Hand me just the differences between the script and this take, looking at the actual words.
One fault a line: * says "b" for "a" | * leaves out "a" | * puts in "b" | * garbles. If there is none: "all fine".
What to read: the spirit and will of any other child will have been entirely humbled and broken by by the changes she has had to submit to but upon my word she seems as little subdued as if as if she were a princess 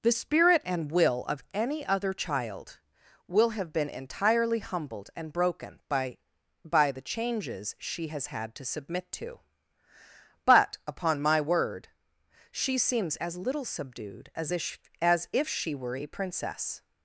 all fine